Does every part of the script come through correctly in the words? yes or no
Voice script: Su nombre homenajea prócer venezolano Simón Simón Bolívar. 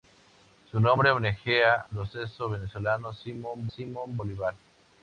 yes